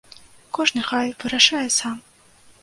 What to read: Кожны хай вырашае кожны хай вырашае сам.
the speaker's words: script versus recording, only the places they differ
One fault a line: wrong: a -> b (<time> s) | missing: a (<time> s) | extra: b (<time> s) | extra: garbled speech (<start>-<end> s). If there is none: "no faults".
missing: кожны хай вырашае (1.6 s)